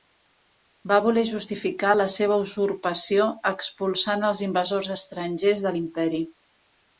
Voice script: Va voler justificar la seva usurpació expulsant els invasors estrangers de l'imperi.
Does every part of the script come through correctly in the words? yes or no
yes